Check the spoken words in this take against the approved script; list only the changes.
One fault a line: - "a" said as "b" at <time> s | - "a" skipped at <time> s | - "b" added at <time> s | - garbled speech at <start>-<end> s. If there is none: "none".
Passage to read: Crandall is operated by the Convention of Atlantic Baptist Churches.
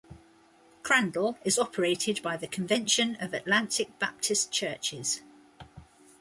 none